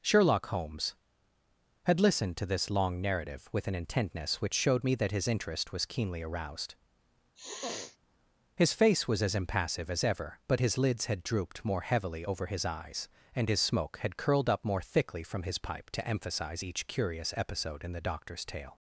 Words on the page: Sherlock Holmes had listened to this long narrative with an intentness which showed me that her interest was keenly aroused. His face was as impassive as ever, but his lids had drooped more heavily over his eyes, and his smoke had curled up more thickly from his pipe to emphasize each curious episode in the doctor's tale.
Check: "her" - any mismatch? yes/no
yes